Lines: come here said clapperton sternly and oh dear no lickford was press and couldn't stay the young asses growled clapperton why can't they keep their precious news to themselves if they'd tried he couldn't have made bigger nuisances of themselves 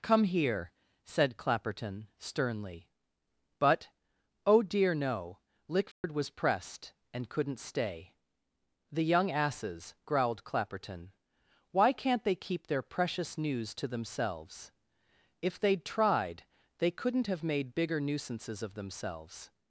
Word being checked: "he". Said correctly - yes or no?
no